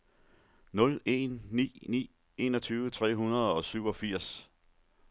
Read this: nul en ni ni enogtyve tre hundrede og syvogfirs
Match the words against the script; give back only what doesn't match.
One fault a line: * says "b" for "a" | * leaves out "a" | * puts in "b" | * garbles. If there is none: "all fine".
all fine